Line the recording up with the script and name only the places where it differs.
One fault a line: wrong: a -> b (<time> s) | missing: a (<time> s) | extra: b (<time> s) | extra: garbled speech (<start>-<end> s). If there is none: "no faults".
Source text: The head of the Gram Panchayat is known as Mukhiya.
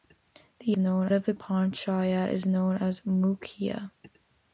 wrong: head -> known (0.8 s)
missing: Gram (1.3 s)